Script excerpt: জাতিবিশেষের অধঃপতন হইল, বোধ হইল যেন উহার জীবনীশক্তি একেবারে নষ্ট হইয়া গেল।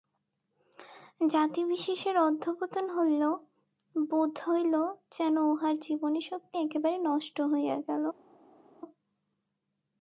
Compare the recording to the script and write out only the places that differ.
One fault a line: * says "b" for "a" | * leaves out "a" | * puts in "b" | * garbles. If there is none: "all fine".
all fine